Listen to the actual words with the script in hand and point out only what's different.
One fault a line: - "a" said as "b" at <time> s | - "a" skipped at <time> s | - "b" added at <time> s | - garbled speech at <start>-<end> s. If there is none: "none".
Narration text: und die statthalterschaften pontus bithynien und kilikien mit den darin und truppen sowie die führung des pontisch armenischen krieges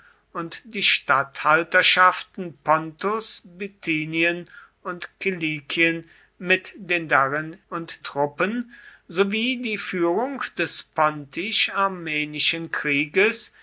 none